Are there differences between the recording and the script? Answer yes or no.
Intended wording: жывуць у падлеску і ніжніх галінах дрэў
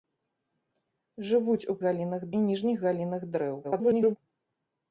yes